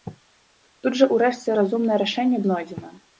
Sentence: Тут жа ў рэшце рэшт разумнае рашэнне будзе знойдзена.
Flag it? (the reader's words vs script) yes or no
yes